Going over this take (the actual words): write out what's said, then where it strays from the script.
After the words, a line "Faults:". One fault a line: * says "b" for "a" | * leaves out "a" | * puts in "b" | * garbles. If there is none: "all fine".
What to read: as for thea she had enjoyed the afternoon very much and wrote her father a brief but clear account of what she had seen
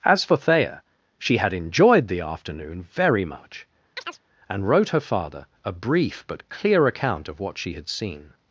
as for thea she had enjoyed the afternoon very much and wrote her father a brief but clear account of what she had seen
Faults:
all fine